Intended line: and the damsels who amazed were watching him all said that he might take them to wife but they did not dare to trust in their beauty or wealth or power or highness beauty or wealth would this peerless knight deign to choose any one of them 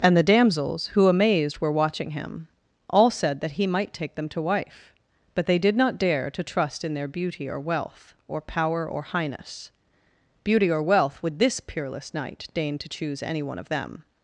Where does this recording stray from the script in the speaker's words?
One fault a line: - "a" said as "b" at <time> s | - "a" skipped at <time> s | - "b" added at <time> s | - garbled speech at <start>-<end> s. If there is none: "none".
none